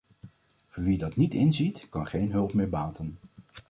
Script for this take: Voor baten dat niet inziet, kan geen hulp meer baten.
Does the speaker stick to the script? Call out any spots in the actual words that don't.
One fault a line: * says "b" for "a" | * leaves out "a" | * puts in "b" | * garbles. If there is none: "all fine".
* says "wie" for "baten"